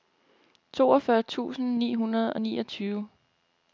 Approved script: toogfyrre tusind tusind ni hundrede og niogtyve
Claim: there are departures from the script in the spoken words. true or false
true